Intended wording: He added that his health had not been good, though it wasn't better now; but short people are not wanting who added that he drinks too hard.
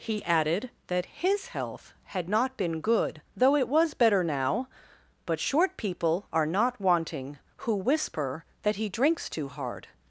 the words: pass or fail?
fail